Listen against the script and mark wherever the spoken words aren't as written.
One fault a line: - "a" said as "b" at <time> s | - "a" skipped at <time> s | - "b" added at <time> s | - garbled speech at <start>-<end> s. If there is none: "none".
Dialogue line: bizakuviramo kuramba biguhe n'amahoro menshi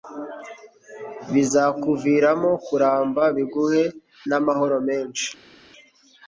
none